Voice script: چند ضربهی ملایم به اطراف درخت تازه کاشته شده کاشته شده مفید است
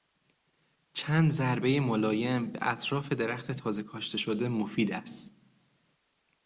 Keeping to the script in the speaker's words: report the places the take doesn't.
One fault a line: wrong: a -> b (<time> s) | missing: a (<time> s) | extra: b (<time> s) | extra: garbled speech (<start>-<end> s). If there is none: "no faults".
missing: کاشته شده (4.5 s)